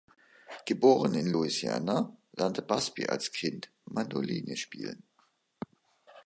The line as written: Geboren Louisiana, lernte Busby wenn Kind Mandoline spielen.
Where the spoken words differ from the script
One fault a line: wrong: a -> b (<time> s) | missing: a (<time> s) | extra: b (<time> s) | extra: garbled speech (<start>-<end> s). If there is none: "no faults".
extra: in (1.1 s)
wrong: wenn -> als (3.1 s)